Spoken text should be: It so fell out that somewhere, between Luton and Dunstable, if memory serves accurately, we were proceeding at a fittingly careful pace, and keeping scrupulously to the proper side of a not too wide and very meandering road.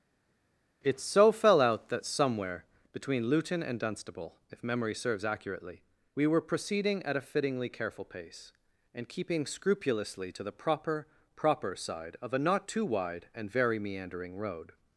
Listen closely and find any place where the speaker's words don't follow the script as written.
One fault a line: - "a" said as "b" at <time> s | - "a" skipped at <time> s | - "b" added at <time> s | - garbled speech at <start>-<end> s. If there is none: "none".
- "proper" added at 11.4 s